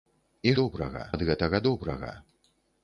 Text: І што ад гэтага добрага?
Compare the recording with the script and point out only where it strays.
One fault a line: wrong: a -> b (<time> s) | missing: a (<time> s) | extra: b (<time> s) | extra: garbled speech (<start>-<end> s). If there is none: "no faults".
wrong: што -> добрага (0.6 s)